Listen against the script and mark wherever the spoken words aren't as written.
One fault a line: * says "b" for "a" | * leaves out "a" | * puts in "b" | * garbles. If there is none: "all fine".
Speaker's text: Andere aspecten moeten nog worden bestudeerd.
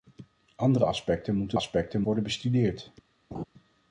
* says "aspecten" for "nog"